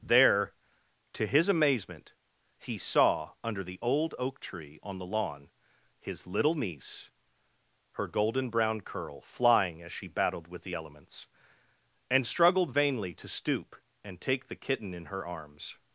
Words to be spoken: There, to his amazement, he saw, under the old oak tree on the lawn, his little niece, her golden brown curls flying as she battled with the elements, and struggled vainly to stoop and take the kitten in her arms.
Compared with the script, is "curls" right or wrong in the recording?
wrong